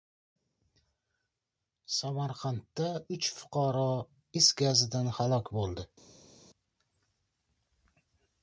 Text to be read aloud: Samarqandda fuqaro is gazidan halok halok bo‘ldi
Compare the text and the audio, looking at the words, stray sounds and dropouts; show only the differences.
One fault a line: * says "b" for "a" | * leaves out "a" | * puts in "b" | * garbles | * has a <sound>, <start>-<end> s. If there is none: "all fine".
* puts in "uch"
* leaves out "halok"